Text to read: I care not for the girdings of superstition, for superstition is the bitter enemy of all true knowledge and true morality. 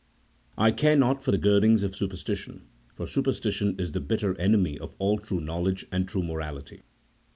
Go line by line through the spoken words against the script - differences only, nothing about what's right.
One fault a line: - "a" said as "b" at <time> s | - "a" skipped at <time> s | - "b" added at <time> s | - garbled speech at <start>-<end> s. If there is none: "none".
none